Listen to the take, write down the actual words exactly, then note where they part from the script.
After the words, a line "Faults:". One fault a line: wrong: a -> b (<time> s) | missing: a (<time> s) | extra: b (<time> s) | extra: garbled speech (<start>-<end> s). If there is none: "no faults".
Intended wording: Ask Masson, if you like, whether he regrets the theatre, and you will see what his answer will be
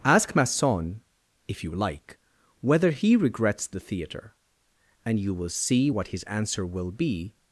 Ask Masson, if you like, whether he regrets the theatre, and you will see what his answer will be
Faults:
no faults